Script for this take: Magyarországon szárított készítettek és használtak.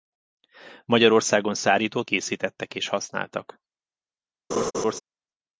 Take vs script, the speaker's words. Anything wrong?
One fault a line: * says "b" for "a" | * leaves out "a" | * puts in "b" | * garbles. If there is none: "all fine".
all fine